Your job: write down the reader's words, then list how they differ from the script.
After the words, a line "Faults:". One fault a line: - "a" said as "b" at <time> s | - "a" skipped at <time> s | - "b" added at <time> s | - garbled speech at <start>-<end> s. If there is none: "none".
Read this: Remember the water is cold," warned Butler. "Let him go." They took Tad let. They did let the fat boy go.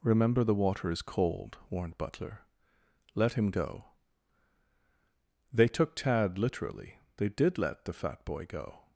Remember the water is cold," warned Butler. "Let him go." They took Tad literally. They did let the fat boy go.
Faults:
- "let" said as "literally" at 6.4 s